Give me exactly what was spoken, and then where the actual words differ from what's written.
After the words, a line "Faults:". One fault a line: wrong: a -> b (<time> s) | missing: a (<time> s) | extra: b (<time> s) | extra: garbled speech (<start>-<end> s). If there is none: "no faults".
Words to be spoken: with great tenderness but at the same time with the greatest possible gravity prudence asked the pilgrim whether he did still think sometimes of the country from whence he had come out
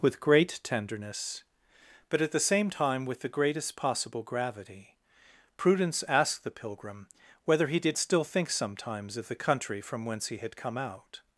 with great tenderness but at the same time with the greatest possible gravity prudence asked the pilgrim whether he did still think sometimes of the country from whence he had come out
Faults:
no faults